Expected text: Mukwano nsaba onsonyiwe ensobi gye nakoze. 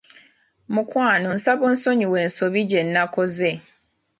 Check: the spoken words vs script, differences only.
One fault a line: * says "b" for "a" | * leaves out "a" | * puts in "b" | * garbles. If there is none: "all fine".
all fine